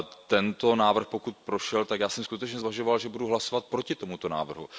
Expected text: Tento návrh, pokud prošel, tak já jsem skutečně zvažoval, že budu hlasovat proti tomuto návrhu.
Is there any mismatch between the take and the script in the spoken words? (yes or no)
no